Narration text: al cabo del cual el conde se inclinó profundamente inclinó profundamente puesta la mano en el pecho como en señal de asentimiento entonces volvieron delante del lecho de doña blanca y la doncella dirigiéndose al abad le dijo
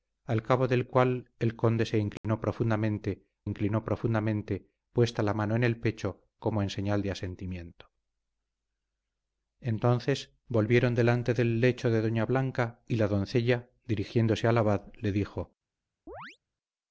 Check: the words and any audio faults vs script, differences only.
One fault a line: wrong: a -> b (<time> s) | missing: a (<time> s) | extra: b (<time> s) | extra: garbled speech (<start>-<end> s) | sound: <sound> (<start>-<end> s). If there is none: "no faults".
sound: dropout (2.2-2.2 s)
sound: chirp (16.1-16.4 s)